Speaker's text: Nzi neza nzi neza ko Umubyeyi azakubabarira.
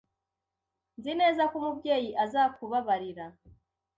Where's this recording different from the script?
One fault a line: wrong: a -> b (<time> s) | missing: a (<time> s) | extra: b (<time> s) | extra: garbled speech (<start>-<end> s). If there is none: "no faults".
missing: nzi neza (1.4 s)